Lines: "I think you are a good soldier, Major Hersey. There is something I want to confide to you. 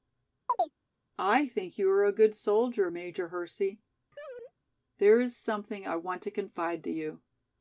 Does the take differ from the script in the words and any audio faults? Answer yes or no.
yes